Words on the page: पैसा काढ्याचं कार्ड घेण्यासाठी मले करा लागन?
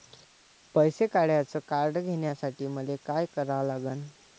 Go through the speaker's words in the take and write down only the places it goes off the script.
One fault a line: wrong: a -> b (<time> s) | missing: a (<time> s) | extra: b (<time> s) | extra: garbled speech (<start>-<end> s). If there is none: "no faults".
extra: काय (3.0 s)